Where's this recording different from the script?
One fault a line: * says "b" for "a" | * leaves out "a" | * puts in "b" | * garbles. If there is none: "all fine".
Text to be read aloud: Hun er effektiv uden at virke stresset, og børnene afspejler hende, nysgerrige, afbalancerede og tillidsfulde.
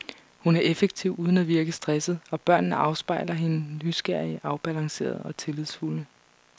all fine